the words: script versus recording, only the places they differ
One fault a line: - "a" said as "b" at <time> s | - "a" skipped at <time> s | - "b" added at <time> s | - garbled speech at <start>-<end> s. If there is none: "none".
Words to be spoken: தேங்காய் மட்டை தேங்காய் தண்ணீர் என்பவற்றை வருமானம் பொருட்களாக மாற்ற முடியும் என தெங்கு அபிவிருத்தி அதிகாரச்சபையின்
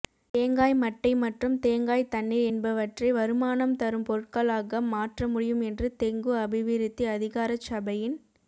- "மற்றும்" added at 1.2 s
- "தரும்" added at 3.8 s
- "என" said as "என்று" at 5.7 s